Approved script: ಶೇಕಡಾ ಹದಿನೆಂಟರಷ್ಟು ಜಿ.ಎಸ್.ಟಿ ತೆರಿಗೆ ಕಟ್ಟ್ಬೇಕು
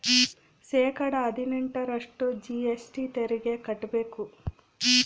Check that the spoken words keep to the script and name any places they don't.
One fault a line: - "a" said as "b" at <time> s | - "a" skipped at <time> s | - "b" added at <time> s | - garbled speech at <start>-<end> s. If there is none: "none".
none